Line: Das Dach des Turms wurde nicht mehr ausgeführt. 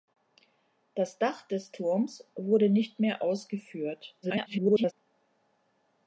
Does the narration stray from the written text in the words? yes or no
yes